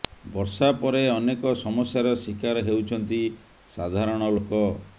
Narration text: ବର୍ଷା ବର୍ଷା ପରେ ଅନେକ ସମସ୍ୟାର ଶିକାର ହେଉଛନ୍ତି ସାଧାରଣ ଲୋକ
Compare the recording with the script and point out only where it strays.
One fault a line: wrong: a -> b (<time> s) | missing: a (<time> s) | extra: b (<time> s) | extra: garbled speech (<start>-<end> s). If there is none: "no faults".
missing: ବର୍ଷା (0.7 s)